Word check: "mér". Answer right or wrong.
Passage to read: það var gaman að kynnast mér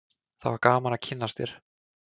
wrong